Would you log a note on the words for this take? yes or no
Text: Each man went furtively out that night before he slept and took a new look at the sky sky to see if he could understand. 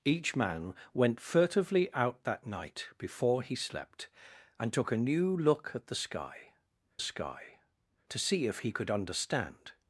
no